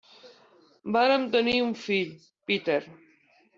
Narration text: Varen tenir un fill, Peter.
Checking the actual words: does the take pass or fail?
pass